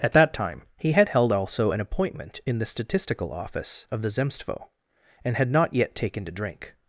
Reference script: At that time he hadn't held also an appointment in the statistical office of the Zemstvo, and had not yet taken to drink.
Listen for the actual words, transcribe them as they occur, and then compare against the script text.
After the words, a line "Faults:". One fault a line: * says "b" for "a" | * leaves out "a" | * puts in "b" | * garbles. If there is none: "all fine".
At that time he had held also an appointment in the statistical office of the Zemstvo, and had not yet taken to drink.
Faults:
* says "had" for "hadn't"